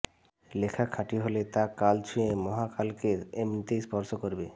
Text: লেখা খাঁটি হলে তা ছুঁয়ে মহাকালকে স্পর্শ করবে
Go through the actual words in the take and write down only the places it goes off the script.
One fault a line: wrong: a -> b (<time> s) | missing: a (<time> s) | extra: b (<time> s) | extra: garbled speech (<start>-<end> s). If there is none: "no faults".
extra: কাল (1.8 s)
extra: এমনিতেই (3.4 s)